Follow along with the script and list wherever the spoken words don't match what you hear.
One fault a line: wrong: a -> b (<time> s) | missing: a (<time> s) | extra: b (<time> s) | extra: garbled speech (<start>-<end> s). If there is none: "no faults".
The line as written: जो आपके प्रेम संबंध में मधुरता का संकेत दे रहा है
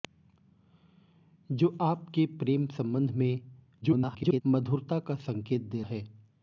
extra: garbled speech (3.8-4.4 s)
missing: रहा (5.8 s)